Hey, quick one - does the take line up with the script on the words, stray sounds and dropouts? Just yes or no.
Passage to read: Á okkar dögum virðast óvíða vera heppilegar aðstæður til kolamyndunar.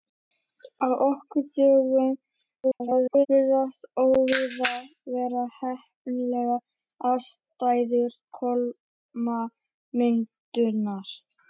no